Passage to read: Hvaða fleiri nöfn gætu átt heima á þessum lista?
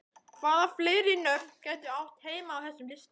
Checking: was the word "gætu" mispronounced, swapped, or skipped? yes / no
no